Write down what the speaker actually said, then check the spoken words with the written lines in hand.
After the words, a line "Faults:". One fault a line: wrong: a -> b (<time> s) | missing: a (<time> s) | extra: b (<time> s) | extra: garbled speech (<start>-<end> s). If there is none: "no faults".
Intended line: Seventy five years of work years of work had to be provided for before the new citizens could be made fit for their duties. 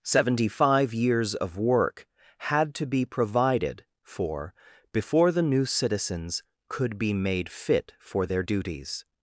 Seventy five years of work had to be provided for before the new citizens could be made fit for their duties.
Faults:
missing: years of work (2.1 s)